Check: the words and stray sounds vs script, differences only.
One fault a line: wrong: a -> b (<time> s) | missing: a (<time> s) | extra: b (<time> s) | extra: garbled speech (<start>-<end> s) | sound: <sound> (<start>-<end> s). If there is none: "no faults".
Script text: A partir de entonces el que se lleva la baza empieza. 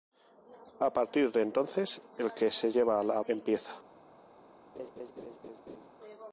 missing: baza (3.2 s)
sound: laugh (4.7-5.9 s)